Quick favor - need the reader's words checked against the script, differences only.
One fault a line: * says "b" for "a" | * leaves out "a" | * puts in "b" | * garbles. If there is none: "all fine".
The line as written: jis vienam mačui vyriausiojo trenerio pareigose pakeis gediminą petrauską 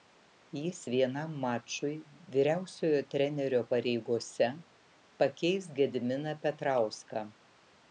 all fine